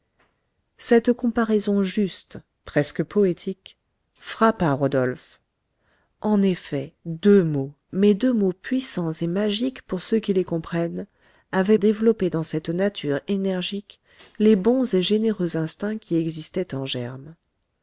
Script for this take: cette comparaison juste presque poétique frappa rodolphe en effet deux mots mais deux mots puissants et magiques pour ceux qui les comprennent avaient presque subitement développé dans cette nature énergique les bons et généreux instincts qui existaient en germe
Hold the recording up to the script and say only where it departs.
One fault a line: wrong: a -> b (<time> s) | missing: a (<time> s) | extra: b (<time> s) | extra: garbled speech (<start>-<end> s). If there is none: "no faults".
missing: presque subitement (11.8 s)